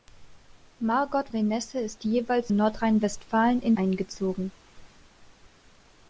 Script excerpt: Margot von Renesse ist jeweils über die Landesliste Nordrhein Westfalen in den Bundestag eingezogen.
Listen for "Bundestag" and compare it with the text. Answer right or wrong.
wrong